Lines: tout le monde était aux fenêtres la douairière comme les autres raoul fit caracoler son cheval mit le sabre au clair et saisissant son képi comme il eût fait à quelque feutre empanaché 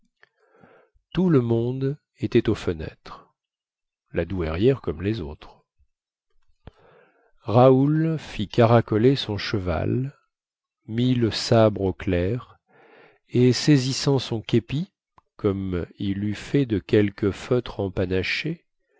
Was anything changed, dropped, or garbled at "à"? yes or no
yes